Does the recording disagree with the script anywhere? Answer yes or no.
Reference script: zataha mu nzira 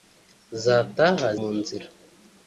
no